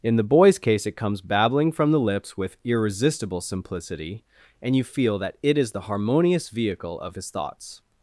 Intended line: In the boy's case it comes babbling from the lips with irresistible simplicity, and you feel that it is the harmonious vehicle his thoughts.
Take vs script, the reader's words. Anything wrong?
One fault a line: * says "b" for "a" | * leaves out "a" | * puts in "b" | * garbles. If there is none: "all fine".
* puts in "of"